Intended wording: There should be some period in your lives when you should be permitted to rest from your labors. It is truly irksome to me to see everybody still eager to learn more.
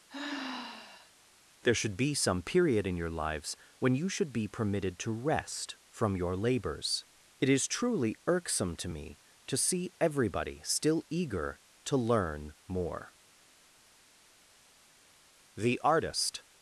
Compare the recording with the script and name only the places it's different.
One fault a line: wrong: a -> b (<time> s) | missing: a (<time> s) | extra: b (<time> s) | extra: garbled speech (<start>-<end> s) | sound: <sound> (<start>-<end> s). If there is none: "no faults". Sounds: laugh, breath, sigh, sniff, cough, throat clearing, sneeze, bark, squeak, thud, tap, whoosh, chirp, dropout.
sound: sigh (0.1-1.1 s)
extra: The artist (15.5 s)